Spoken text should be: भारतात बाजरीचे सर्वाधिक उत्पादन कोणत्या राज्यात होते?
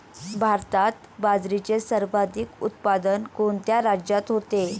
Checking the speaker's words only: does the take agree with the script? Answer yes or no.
yes